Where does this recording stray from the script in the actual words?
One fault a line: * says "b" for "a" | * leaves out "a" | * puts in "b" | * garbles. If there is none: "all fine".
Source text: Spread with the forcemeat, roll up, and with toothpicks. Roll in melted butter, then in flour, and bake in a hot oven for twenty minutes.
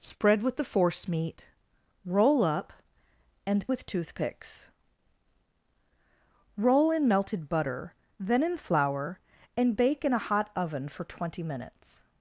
all fine